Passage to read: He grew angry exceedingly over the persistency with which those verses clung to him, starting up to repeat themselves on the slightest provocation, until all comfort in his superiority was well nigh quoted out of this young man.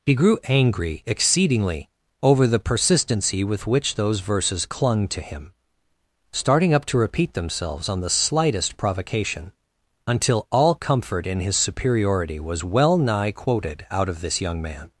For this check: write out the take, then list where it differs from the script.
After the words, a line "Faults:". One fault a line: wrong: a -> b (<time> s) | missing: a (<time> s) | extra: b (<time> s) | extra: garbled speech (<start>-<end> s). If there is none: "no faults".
He grew angry exceedingly over the persistency with which those verses clung to him, starting up to repeat themselves on the slightest provocation, until all comfort in his superiority was well nigh quoted out of this young man.
Faults:
no faults